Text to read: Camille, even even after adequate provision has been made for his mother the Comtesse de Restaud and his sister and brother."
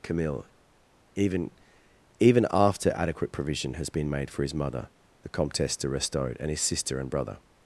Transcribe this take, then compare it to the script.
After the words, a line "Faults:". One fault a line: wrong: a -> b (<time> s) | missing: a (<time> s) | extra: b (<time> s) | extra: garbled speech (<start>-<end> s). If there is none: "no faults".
Camille, even even after adequate provision has been made for his mother the Comtesse de Restaud and his sister and brother."
Faults:
no faults